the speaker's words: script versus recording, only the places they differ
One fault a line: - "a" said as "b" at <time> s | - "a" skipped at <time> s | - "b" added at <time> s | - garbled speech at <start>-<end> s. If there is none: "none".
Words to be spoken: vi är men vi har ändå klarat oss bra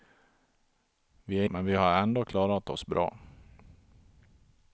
none